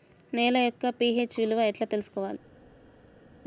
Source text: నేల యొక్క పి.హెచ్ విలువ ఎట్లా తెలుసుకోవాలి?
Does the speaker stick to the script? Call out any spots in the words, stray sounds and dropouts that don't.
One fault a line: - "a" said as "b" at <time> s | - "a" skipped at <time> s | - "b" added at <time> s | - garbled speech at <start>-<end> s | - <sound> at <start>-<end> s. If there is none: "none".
none